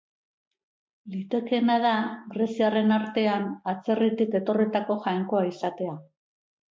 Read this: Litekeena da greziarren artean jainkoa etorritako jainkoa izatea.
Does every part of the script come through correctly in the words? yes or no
no